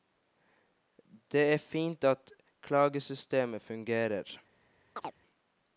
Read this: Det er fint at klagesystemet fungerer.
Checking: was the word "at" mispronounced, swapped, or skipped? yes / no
no